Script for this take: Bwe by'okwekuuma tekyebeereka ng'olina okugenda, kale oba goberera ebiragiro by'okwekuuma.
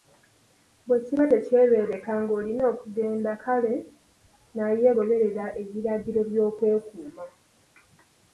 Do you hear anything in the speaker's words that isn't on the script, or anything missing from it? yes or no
yes